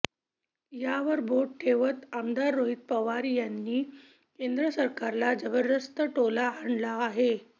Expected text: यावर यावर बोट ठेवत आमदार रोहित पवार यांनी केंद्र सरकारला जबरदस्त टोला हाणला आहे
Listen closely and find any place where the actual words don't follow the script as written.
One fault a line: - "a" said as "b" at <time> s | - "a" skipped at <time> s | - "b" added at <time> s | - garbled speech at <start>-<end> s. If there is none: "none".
- "यावर" skipped at 1.2 s